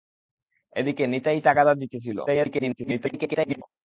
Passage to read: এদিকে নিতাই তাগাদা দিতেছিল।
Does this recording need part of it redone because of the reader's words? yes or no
yes